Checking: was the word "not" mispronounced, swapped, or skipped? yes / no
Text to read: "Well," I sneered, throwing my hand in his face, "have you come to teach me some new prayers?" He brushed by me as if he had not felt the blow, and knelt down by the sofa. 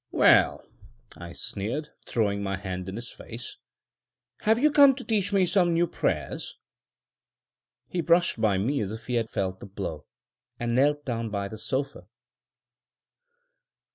yes